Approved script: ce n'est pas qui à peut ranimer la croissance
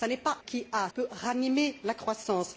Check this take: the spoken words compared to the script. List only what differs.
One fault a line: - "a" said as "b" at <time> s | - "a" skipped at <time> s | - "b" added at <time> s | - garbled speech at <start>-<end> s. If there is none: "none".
none